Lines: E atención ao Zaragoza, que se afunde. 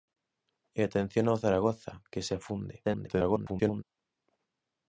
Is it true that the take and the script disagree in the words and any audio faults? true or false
true